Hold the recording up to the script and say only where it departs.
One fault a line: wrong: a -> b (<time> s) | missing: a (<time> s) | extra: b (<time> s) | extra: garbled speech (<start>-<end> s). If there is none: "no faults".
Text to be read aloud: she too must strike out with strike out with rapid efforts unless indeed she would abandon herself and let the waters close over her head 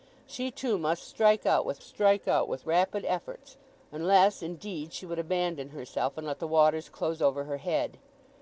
no faults